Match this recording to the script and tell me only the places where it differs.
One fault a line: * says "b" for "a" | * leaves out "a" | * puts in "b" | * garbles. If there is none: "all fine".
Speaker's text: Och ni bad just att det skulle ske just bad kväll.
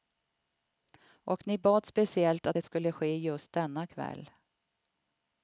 * says "speciellt" for "just"
* says "denna" for "bad"